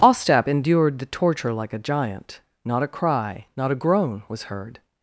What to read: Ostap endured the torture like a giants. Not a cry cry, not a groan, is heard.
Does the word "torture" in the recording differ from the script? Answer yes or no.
no